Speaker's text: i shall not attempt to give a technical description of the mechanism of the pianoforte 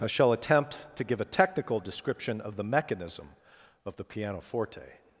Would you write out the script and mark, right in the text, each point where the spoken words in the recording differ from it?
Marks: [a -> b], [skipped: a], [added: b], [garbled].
i shall [skipped: not] attempt to give a technical description of the mechanism of the pianoforte